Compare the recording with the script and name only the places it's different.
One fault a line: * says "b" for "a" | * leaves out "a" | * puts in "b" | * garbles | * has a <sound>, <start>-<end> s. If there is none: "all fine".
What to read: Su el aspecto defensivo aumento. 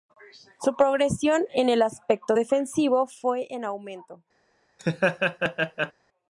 * puts in "progresión en"
* puts in "fue en"
* has a laugh, 4.8-5.9 s